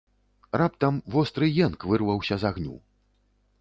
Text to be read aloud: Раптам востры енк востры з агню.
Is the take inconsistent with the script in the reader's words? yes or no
yes